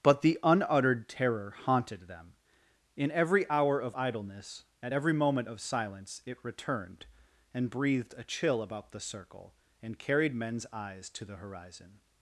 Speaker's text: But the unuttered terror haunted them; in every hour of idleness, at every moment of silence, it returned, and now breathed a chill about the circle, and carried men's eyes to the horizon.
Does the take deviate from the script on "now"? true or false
true